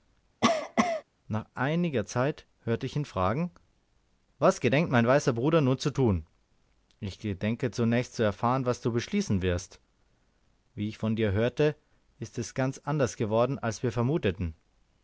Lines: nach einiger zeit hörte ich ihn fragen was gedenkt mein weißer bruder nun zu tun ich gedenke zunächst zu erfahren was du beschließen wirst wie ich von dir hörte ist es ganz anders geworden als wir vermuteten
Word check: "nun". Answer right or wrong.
right